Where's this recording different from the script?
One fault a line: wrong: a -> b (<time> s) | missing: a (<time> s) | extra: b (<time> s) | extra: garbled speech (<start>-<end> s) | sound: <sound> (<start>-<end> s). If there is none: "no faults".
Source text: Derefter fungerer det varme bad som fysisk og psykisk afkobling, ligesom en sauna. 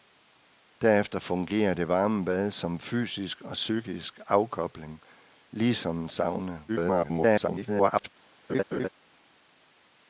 extra: garbled speech (6.7-8.1 s)
sound: laugh (8.5-8.9 s)